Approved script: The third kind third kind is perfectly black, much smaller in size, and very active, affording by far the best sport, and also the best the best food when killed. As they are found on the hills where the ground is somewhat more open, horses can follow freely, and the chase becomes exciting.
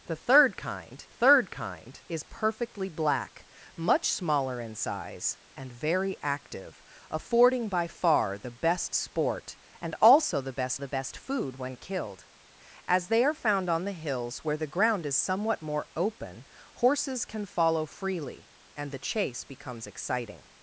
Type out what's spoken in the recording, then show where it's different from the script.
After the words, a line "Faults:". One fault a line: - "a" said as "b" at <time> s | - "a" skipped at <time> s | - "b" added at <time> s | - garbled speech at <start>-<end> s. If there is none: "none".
The third kind third kind is perfectly black, much smaller in size, and very active, affording by far the best sport, and also the best the best food when killed. As they are found on the hills where the ground is somewhat more open, horses can follow freely, and the chase becomes exciting.
Faults:
none